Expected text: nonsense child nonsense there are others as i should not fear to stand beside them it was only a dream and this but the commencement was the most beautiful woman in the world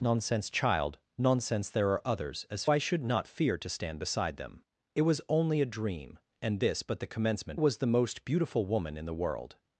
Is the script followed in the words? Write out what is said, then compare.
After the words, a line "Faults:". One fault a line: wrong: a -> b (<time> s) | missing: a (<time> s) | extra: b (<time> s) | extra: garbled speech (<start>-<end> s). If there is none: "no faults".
nonsense child nonsense there are others as i should not fear to stand beside them it was only a dream and this but the commencement was the most beautiful woman in the world
Faults:
no faults